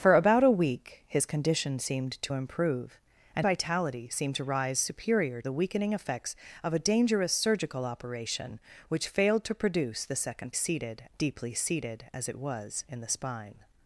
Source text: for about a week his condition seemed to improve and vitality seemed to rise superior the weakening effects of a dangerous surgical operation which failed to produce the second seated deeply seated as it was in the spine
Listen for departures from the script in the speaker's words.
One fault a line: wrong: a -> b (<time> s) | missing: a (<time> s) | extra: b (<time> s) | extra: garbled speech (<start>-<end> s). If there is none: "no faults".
no faults